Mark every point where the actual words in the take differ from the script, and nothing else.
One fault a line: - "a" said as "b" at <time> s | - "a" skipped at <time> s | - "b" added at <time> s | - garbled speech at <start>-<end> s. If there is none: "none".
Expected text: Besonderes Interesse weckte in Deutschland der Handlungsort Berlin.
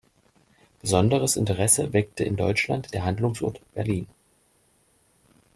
none